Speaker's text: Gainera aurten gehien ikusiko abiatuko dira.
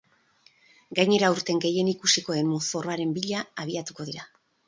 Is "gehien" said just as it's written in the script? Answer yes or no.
yes